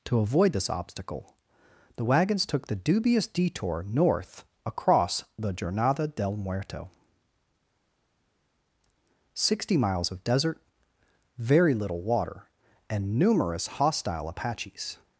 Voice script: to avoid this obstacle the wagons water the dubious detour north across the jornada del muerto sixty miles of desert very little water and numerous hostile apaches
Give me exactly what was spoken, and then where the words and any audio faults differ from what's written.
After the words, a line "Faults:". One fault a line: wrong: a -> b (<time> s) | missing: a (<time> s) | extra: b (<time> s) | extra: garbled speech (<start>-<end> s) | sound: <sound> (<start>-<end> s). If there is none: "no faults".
to avoid this obstacle the wagons took the dubious detour north across the jornada del muerto sixty miles of desert very little water and numerous hostile apaches
Faults:
wrong: water -> took (2.5 s)